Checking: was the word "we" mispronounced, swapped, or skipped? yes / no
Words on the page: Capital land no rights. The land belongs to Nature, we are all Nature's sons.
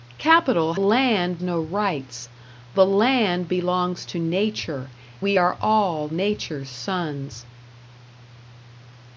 no